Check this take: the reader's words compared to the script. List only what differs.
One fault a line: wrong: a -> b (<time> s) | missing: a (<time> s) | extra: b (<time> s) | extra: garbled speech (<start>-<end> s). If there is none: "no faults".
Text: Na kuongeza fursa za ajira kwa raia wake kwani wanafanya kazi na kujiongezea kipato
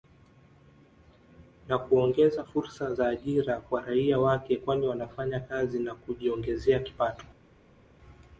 no faults